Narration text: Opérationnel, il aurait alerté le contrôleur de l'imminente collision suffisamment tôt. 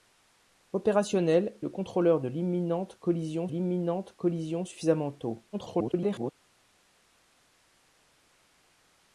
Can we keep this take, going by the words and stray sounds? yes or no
no